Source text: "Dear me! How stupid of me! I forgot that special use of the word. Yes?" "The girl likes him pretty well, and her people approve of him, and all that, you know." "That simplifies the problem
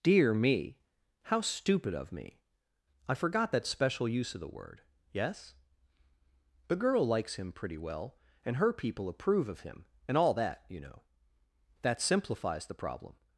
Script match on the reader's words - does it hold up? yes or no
yes